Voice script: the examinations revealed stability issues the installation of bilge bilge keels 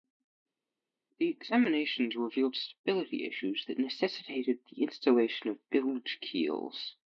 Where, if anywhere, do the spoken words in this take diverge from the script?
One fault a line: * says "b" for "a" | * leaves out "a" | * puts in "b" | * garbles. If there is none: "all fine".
* puts in "that necessitated"
* leaves out "bilge"